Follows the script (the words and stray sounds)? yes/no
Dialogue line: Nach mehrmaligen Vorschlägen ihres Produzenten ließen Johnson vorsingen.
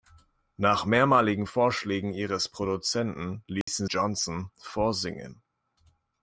no